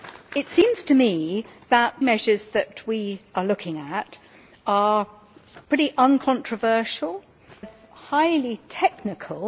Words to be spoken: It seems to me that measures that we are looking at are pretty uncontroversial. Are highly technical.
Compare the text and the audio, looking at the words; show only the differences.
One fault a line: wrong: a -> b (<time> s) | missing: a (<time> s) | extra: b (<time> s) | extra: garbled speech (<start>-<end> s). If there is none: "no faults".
no faults